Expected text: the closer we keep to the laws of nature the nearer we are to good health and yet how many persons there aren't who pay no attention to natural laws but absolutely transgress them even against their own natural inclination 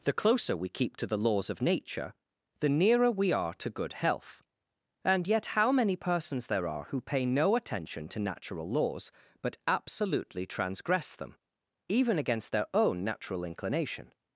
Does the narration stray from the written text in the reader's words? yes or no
yes